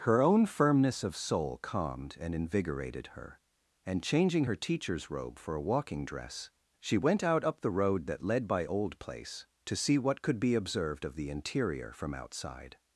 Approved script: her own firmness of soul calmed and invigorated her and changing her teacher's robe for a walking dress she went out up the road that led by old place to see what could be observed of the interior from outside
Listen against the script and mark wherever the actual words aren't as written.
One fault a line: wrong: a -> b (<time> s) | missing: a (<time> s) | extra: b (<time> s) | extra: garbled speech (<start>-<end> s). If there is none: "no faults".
no faults